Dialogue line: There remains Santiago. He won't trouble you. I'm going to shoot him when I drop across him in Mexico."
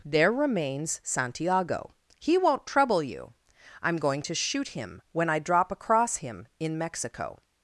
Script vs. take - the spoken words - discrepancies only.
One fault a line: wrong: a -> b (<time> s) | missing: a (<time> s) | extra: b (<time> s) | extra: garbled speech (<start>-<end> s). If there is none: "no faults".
no faults